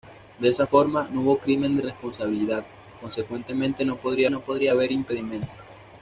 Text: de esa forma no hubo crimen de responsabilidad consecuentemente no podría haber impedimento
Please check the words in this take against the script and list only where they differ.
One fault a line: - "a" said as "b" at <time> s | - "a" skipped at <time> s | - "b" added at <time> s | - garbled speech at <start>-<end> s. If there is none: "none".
- "no podría" added at 4.3 s